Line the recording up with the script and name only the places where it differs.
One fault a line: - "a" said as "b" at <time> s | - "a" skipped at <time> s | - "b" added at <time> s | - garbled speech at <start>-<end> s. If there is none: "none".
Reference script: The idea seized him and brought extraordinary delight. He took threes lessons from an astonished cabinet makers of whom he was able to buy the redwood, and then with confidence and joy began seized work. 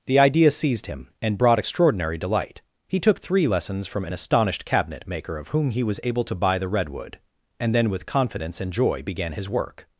- "threes" said as "three" at 3.2 s
- "makers" said as "maker" at 5.1 s
- "seized" said as "his" at 9.3 s